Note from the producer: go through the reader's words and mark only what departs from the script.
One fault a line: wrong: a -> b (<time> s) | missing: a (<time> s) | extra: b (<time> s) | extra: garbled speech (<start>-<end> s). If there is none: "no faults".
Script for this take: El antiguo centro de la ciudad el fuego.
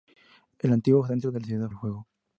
no faults